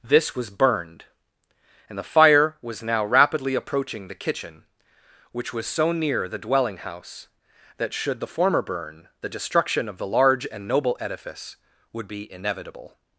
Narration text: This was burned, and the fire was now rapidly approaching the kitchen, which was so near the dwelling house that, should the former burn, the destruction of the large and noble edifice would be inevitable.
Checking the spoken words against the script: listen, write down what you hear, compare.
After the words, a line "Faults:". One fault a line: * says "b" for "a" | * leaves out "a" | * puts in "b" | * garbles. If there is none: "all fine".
This was burned, and the fire was now rapidly approaching the kitchen, which was so near the dwelling house that, should the former burn, the destruction of the large and noble edifice would be inevitable.
Faults:
all fine